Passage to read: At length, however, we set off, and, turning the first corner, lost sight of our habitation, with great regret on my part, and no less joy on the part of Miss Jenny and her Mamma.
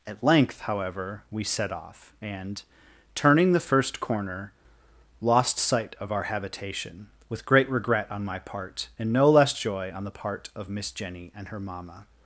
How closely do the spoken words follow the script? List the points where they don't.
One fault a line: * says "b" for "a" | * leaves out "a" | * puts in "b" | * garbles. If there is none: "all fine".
all fine